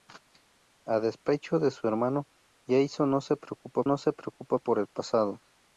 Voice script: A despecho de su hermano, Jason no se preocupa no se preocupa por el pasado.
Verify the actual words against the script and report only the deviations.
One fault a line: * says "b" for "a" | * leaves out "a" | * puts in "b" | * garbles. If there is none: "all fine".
all fine